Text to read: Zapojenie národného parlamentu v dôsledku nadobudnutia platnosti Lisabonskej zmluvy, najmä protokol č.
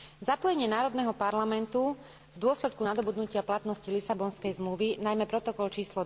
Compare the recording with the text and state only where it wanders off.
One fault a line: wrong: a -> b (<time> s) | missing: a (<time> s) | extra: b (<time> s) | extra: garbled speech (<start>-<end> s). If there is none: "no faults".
no faults